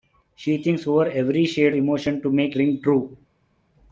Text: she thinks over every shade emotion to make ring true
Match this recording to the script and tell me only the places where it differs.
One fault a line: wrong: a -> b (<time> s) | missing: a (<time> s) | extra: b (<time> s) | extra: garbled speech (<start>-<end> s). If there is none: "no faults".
no faults